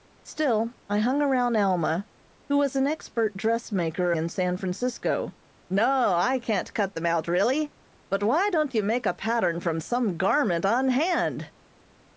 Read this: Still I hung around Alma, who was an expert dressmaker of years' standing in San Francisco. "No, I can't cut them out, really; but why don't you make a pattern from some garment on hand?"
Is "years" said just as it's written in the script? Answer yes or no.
no